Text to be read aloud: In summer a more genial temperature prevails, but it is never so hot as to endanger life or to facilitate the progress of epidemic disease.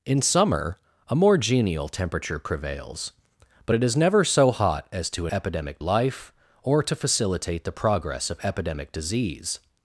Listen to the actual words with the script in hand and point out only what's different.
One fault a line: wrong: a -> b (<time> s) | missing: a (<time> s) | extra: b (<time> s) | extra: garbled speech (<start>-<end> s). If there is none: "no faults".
wrong: endanger -> epidemic (5.3 s)